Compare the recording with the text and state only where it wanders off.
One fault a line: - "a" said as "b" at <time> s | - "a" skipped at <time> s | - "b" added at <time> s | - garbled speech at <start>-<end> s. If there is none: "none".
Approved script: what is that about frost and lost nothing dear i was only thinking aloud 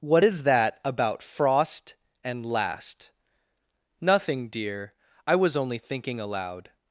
- "lost" said as "last" at 2.5 s